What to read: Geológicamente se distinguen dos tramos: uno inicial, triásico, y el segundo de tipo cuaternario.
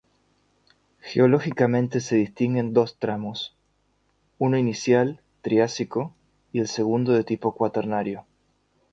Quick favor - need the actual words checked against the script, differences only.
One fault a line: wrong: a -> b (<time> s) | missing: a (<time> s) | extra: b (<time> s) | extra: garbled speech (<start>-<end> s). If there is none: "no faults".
no faults